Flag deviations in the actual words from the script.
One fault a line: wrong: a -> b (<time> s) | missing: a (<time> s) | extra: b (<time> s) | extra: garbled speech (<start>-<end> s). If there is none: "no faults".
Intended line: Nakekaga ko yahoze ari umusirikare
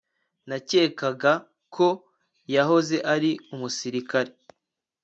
no faults